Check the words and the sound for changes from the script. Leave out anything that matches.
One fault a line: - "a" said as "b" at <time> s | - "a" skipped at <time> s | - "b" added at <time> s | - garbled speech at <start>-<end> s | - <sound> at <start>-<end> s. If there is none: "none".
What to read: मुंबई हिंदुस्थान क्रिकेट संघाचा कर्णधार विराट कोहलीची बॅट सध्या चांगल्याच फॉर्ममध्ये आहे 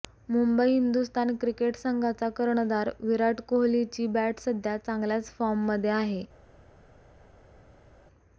none